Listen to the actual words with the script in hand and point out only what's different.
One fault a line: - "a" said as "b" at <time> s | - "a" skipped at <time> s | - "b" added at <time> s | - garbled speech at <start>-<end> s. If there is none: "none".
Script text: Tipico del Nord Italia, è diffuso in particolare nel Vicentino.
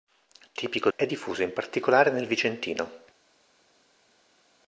- "del Nord Italia" skipped at 0.9 s